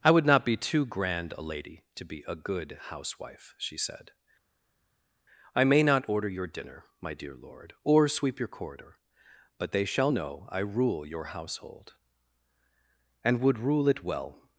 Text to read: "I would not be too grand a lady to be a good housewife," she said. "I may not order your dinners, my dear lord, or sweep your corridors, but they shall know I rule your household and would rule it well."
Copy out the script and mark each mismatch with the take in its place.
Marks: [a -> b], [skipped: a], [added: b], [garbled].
"I would not be too grand a lady to be a good housewife," she said. "I may not order your [dinners, -> dinner] my dear lord, or sweep your [corridors, -> corridor] but they shall know I rule your household and would rule it well."